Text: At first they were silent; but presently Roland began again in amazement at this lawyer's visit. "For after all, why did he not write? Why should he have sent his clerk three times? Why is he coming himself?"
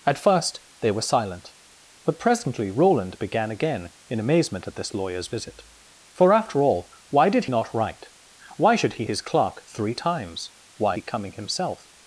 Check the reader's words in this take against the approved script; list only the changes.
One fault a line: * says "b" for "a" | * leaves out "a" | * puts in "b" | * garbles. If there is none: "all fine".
* leaves out "he"
* leaves out "have sent"
* leaves out "is"